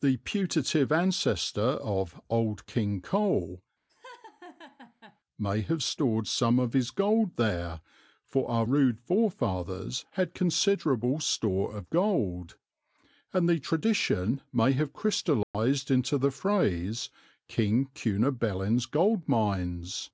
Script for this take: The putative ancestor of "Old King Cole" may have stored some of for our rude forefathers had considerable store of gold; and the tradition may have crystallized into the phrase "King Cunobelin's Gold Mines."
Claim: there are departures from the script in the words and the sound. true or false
true